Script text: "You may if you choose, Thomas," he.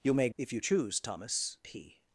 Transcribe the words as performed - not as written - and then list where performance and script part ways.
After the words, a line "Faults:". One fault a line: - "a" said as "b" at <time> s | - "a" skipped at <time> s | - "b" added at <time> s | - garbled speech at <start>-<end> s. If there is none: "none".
"You may if you choose, Thomas," he.
Faults:
none